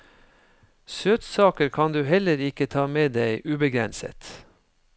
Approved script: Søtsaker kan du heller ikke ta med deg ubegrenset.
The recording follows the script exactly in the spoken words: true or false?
true